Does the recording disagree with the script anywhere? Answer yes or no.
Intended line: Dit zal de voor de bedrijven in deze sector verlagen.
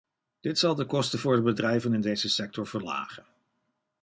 yes